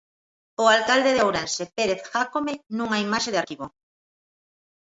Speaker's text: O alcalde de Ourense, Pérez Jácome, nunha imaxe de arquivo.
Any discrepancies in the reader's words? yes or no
no